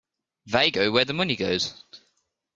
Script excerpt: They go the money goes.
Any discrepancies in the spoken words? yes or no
yes